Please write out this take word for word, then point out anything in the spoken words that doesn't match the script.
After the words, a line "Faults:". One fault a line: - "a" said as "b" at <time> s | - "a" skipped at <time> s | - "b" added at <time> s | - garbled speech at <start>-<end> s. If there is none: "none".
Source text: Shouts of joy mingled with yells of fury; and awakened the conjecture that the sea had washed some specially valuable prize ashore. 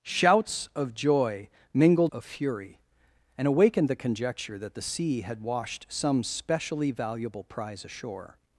Shouts of joy mingled of fury; and awakened the conjecture that the sea had washed some specially valuable prize ashore.
Faults:
- "with yells" skipped at 2.1 s